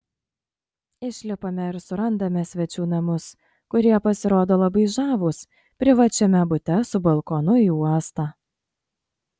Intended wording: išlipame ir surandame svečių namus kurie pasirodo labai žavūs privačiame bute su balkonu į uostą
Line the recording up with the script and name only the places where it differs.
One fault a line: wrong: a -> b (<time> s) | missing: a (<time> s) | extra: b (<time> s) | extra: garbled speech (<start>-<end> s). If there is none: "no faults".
no faults